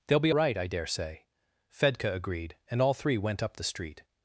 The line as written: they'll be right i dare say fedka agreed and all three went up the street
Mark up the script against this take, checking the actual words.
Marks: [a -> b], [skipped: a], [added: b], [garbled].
they'll be right i dare say fedka agreed and all three went up the street